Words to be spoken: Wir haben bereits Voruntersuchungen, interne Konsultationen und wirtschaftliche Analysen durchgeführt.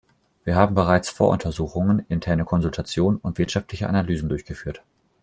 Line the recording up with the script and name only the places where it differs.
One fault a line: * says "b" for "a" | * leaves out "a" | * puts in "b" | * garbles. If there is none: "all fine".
all fine